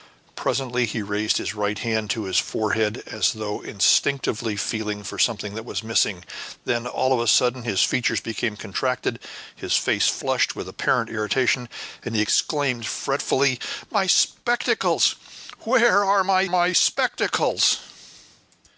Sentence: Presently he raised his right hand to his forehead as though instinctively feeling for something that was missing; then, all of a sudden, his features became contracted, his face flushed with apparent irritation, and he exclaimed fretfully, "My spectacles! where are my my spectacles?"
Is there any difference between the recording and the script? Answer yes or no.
no